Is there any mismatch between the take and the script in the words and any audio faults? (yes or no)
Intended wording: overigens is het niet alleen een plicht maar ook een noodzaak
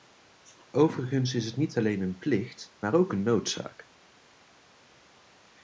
no